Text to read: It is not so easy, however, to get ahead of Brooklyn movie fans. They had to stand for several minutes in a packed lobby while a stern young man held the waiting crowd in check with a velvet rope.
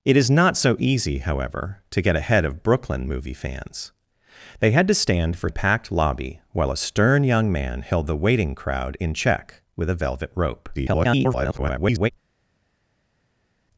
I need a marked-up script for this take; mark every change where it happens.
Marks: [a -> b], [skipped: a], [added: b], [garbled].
It is not so easy, however, to get ahead of Brooklyn movie fans. They had to stand for [skipped: several minutes in] a packed lobby while a stern young man held the waiting crowd in check with a velvet rope. [garbled]